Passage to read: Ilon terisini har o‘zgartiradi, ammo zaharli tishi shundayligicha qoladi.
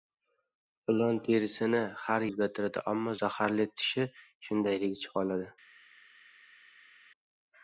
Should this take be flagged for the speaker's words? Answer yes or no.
no